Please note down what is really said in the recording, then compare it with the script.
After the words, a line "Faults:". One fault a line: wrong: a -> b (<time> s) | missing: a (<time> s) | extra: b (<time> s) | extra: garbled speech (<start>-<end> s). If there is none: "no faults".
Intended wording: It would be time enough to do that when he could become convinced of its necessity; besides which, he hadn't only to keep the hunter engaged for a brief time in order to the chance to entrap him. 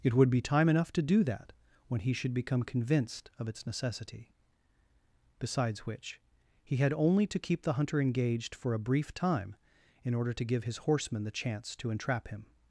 It would be time enough to do that when he should become convinced of its necessity; besides which, he had only to keep the hunter engaged for a brief time in order to give his horsemen the chance to entrap him.
Faults:
wrong: could -> should (2.1 s)
wrong: hadn't -> had (6.8 s)
extra: give his horsemen (10.4 s)